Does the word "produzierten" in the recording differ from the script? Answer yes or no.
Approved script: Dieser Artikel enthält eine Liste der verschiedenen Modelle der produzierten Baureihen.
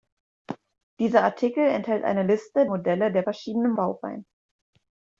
yes